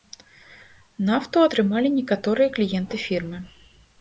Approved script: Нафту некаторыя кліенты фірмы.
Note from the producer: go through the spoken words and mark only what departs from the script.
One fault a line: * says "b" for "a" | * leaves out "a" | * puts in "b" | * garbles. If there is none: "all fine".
* puts in "атрымалі"